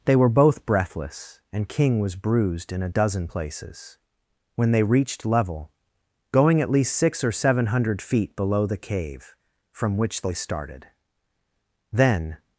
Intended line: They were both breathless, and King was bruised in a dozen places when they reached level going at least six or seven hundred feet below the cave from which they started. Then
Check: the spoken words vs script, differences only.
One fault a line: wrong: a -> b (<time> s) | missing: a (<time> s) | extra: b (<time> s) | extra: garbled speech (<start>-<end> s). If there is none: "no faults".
no faults